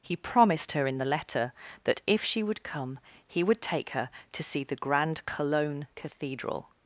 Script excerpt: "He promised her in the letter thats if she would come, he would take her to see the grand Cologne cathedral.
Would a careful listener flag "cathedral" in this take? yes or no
no